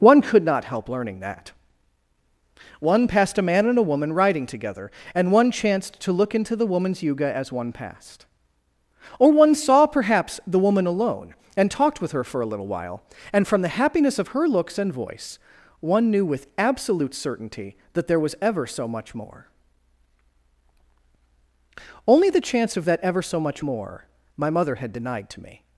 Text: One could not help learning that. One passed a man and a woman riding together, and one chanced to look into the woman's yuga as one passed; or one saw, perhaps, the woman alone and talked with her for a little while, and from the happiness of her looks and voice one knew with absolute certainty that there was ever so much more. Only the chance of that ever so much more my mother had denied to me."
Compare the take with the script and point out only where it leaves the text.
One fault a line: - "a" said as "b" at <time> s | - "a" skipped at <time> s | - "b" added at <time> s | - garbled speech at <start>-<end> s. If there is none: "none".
none